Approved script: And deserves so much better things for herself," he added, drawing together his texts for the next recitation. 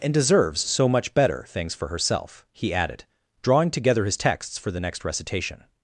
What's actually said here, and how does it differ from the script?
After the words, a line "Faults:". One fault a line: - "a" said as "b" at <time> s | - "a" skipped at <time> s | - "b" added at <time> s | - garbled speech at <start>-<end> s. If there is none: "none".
And deserves so much better things for herself," he added, drawing together his texts for the next recitation.
Faults:
none